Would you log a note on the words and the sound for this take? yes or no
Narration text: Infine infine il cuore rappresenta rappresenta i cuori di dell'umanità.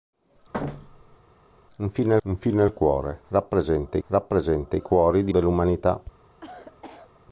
yes